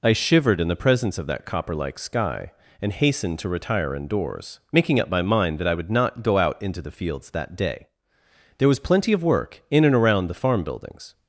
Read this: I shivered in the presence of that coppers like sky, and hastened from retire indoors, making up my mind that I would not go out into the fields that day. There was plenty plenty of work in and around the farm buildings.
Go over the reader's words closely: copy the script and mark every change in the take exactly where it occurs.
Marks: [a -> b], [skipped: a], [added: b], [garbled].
I shivered in the presence of that [coppers -> copper] like sky, and hastened [from -> to] retire indoors, making up my mind that I would not go out into the fields that day. There was plenty [skipped: plenty] of work in and around the farm buildings.